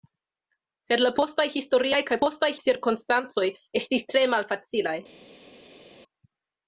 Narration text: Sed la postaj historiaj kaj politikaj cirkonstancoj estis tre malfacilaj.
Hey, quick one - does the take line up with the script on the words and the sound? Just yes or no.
no